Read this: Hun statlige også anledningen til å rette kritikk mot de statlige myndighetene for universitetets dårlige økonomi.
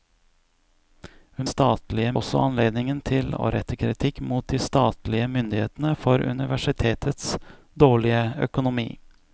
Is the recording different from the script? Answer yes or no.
no